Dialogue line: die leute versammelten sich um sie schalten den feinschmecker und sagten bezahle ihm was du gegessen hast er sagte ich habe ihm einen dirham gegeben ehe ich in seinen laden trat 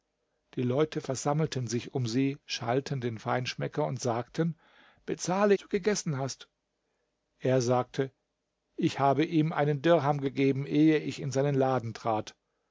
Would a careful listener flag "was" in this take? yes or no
yes